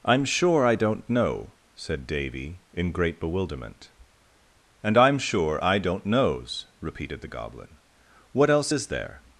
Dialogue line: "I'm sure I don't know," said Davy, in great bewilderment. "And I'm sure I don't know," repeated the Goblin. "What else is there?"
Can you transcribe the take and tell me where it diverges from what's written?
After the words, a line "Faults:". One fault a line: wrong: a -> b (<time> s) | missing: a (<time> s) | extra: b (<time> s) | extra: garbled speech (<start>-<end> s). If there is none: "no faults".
"I'm sure I don't know," said Davy, in great bewilderment. "And I'm sure I don't knows," repeated the Goblin. "What else is there?"
Faults:
wrong: know -> knows (6.0 s)